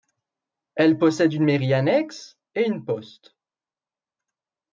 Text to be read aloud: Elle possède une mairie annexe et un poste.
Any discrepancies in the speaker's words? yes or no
yes